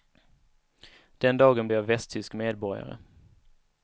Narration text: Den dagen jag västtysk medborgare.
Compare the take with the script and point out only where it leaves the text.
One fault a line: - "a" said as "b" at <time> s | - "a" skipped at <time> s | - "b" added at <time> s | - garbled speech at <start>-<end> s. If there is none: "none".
none